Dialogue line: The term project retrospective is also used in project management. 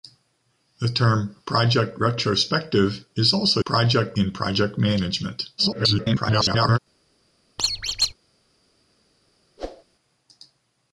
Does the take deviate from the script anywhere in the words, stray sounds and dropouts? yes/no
yes